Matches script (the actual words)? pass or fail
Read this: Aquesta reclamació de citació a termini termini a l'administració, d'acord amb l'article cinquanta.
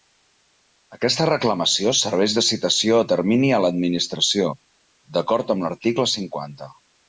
fail